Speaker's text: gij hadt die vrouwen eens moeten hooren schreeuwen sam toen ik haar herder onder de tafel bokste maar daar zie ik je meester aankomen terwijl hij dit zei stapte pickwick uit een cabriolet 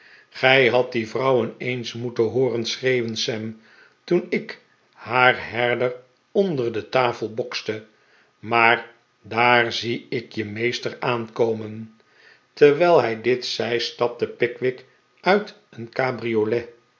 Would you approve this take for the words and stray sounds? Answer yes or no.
yes